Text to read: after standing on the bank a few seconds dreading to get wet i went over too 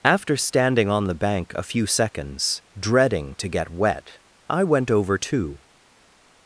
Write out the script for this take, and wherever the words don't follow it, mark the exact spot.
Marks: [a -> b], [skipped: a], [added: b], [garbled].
after standing on the bank a few seconds dreading to get wet i went over too